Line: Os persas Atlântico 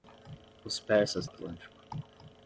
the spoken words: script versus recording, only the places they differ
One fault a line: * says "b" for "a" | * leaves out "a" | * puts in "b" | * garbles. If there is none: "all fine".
all fine